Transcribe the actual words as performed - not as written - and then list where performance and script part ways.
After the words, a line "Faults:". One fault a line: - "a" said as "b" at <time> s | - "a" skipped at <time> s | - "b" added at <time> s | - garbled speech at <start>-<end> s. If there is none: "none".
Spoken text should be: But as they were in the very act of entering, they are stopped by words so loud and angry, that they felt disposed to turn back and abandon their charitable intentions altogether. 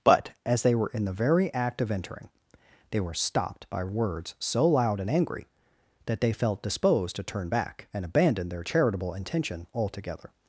But as they were in the very act of entering, they were stopped by words so loud and angry, that they felt disposed to turn back and abandon their charitable intention altogether.
Faults:
- "are" said as "were" at 3.0 s
- "intentions" said as "intention" at 9.1 s